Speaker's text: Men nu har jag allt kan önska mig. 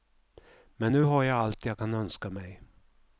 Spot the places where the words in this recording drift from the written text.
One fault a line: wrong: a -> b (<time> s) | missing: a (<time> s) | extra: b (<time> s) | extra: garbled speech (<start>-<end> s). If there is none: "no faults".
extra: jag (1.6 s)